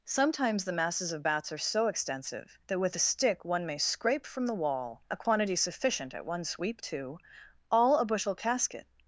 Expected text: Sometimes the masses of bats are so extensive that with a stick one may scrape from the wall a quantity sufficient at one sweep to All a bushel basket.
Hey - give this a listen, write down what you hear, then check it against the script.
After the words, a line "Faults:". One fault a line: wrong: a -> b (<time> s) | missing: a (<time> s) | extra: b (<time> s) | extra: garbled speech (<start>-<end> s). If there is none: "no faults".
Sometimes the masses of bats are so extensive that with a stick one may scrape from the wall a quantity sufficient at one sweep to All a bushel casket.
Faults:
wrong: basket -> casket (8.3 s)